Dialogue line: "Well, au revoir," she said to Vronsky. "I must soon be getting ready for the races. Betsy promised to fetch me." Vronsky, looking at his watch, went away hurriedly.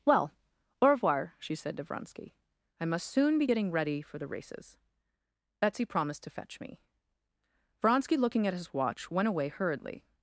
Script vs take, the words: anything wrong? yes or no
no